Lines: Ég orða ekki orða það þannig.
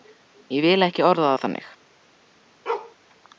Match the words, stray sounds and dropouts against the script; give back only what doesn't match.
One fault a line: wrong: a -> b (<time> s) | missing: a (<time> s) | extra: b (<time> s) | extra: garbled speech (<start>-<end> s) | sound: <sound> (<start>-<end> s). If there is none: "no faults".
wrong: orða -> vil (0.7 s)
sound: bark (2.7-3.0 s)